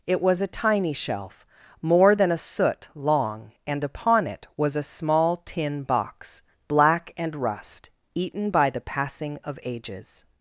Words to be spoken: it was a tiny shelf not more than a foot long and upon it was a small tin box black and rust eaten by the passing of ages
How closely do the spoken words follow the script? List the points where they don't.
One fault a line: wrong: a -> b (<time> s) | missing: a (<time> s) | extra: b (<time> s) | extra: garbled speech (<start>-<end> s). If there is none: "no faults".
missing: not (1.4 s)
wrong: foot -> soot (2.4 s)